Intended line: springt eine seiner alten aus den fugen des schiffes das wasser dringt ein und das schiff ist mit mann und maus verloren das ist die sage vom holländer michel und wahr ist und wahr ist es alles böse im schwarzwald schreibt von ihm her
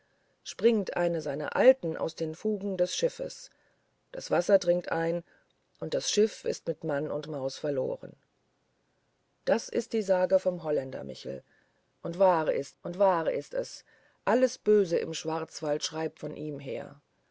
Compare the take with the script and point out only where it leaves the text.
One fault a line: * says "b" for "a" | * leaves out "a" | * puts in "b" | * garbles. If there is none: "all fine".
all fine